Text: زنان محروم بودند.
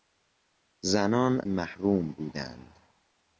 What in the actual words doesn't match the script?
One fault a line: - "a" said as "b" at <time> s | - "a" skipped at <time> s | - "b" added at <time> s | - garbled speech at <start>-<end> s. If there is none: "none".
none